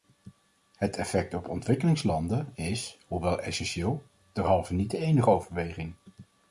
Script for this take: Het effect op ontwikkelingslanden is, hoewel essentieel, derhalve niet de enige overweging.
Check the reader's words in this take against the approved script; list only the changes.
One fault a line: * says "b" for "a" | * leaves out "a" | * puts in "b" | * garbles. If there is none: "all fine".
all fine